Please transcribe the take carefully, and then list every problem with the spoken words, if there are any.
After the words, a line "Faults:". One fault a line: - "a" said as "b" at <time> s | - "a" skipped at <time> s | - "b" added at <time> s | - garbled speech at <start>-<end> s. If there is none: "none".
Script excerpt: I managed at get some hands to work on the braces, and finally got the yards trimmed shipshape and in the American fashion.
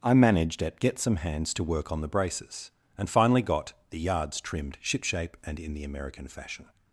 I managed at get some hands to work on the braces, and finally got the yards trimmed shipshape and in the American fashion.
Faults:
none